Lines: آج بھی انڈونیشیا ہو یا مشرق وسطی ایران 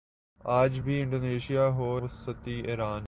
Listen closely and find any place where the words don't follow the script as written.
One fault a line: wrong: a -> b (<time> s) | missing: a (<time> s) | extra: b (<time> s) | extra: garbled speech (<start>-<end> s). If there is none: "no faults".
missing: یا مشرق (2.0 s)